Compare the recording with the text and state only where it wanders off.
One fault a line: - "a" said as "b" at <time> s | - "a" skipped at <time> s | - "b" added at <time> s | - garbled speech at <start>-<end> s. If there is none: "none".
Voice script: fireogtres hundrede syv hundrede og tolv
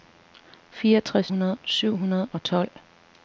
none